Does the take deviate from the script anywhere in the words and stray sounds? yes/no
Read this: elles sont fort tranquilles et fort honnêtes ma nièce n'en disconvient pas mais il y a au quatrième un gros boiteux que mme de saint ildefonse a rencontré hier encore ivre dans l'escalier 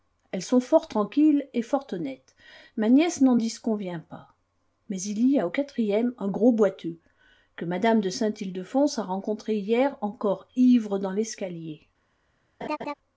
yes